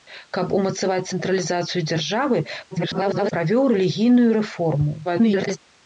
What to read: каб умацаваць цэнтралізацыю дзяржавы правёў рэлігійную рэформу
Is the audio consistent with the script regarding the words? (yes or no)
no